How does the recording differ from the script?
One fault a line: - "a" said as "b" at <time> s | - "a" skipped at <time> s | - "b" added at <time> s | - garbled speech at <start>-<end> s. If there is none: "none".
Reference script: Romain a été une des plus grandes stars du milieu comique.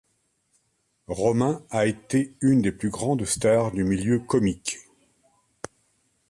none